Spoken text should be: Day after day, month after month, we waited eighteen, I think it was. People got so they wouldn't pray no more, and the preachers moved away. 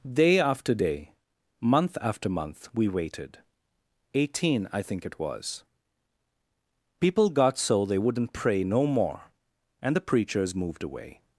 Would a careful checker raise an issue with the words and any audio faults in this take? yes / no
no